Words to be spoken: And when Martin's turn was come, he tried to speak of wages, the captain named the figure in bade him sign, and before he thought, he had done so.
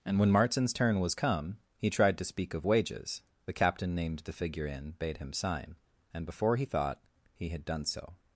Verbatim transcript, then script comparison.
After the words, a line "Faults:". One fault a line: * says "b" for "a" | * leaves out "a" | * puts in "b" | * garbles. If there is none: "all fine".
And when Martin's turn was come, he tried to speak of wages, the captain named the figure in bade him sign, and before he thought, he had done so.
Faults:
all fine